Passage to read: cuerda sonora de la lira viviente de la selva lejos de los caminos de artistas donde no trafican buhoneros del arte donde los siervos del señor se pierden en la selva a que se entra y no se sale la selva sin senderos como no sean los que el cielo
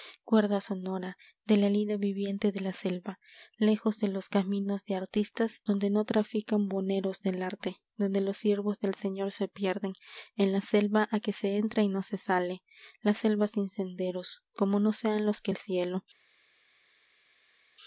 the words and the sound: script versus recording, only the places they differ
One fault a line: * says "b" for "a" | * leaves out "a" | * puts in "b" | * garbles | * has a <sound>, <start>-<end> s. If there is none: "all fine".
all fine